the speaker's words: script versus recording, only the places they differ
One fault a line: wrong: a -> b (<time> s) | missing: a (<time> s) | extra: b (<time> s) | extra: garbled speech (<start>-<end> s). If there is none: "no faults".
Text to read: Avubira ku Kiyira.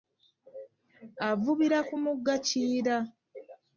extra: mugga (2.0 s)